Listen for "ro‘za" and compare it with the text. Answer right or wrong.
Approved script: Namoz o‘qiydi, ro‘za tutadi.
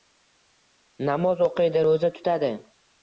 right